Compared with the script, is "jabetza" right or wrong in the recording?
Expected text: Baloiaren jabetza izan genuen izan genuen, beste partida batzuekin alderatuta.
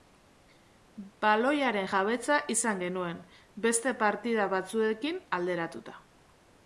right